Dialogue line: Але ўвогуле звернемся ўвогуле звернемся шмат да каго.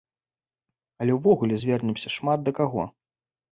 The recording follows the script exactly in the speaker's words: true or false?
false